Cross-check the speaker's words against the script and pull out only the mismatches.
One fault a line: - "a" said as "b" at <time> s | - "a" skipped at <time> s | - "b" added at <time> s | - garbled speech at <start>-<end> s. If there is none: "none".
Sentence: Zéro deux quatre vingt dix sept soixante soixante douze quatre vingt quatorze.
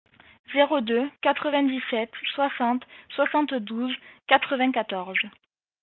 none